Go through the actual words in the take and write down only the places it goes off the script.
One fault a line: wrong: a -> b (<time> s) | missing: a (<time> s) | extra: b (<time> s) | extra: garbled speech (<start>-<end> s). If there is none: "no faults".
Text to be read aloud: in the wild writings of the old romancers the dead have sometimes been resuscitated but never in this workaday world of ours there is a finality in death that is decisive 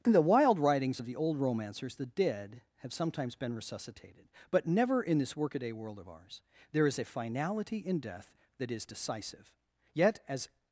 extra: yet as (9.9 s)